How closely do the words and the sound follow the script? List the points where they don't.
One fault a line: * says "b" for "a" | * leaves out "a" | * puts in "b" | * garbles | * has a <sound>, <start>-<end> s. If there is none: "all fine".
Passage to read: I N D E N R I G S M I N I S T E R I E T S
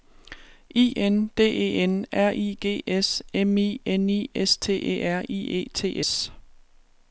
all fine